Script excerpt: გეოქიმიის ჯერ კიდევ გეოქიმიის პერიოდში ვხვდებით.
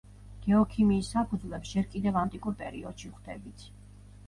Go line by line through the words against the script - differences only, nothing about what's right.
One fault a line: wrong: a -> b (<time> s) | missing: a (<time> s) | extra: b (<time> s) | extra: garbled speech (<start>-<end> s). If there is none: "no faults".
extra: საფუძვლებს (1.2 s)
wrong: გეოქიმიის -> ანტიკურ (2.2 s)